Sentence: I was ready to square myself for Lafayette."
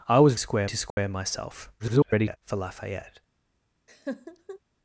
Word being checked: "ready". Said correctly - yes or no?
no